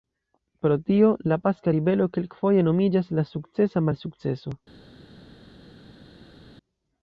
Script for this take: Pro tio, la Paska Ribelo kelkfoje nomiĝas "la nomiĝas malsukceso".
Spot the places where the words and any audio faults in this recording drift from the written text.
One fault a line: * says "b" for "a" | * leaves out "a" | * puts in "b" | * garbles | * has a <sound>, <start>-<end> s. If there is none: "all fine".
* says "sukcesa" for "nomiĝas"